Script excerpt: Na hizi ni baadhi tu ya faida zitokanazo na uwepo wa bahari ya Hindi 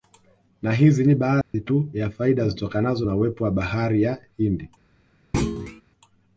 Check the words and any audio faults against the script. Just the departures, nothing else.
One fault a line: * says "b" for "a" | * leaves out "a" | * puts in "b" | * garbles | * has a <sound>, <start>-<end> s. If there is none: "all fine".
* has a dropout, 1.4-1.5 s
* has a thud, 5.3-5.8 s